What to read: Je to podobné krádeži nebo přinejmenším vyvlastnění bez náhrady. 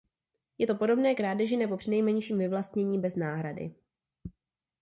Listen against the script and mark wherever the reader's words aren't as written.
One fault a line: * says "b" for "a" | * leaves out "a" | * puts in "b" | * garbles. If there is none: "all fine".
all fine